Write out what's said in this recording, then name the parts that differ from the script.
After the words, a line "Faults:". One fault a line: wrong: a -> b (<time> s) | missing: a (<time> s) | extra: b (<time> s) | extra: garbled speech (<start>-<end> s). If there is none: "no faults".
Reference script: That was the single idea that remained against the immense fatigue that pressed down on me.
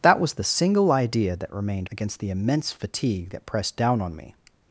That was the single idea that remained against the immense fatigue that pressed down on me.
Faults:
no faults